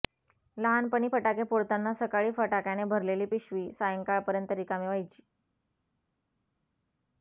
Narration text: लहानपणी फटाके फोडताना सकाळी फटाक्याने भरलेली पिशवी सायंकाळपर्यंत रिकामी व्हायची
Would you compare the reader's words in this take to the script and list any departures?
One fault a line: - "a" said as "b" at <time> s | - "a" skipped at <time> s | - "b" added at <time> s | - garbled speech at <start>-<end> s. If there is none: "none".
none